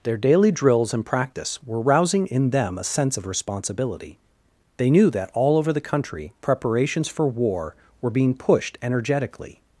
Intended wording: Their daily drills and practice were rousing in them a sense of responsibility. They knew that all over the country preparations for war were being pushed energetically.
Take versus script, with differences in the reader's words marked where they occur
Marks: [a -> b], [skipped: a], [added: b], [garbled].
Their daily drills and practice were rousing in them a sense of responsibility. They knew that all over the country preparations for war were being pushed energetically.